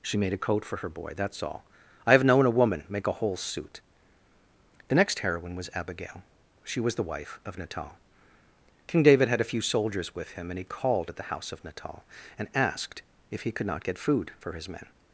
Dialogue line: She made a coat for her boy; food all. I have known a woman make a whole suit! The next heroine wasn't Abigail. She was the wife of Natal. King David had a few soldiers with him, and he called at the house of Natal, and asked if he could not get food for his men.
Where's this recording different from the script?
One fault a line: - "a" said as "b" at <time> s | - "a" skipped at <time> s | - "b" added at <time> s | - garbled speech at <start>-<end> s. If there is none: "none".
- "food" said as "that's" at 1.1 s
- "wasn't" said as "was" at 5.5 s